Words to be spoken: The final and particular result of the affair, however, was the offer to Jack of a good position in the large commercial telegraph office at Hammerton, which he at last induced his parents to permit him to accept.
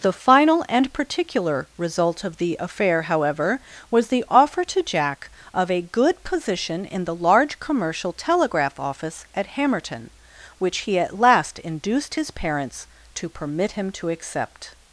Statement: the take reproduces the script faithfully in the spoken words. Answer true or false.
true